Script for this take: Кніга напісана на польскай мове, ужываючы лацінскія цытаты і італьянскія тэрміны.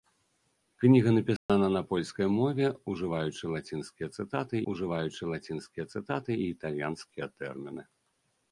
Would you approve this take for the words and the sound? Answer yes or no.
no